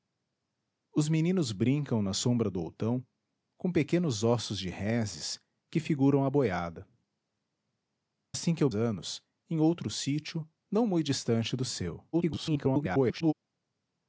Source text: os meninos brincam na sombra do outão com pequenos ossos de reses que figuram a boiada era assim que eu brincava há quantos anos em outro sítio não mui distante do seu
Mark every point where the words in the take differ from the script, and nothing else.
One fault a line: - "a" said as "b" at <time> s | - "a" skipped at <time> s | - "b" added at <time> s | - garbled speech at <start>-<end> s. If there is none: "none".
- "era" skipped at 6.9 s
- "brincava há quantos" skipped at 8.7 s
- garbled speech at 12.1-13.3 s